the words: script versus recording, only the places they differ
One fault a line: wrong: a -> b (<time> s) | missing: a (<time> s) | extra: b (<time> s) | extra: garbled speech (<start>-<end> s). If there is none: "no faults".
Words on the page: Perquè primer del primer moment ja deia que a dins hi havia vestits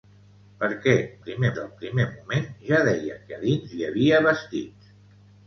no faults